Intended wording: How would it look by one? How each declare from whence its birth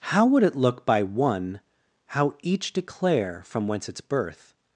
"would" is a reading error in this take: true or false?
false